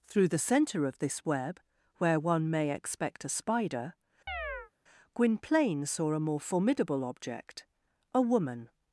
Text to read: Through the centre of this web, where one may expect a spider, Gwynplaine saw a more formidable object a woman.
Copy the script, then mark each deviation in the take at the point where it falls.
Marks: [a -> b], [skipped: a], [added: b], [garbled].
Through the centre of this web, where one may expect a spider, Gwynplaine saw a more formidable object a woman.